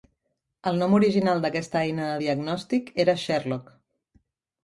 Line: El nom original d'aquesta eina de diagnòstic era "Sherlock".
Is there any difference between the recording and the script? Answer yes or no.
no